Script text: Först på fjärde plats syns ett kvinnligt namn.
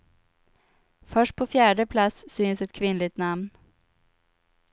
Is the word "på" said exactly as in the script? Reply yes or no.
yes